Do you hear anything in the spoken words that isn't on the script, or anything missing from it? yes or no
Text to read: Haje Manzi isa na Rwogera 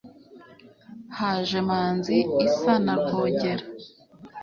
no